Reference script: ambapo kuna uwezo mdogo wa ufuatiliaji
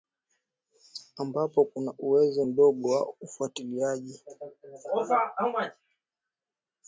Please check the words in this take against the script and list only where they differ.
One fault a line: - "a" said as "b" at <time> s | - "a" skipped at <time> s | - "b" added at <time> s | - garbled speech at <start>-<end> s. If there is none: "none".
none